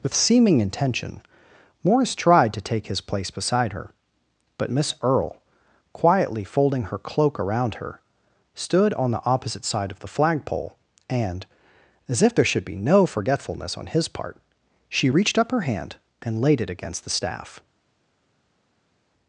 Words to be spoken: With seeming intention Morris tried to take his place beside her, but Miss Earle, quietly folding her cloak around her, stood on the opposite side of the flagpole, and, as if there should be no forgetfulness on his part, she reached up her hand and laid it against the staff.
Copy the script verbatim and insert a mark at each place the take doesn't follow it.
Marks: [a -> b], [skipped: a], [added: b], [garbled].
With seeming intention Morris tried to take his place beside her, but Miss Earle, quietly folding her cloak around her, stood on the opposite side of the flagpole, and, as if there should be no forgetfulness on his part, she reached up her hand and laid it against the staff.